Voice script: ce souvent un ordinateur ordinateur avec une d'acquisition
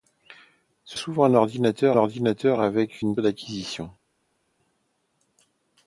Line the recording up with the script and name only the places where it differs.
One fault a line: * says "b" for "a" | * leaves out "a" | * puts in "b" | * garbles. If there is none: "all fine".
all fine